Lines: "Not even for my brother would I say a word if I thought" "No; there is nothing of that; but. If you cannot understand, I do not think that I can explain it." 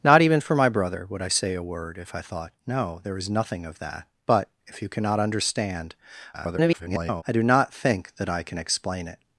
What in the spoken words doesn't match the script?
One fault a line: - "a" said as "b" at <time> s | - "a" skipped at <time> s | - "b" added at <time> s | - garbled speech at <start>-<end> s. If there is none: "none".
- garbled speech at 6.3-7.2 s